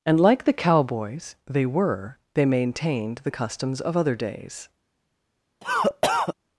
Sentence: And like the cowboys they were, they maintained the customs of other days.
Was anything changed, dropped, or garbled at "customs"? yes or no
no